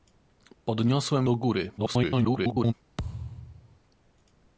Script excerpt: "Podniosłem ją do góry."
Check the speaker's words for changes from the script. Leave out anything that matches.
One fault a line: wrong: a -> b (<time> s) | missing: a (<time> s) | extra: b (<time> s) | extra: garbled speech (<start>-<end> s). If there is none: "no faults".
missing: ją (1.3 s)
extra: garbled speech (1.8-2.7 s)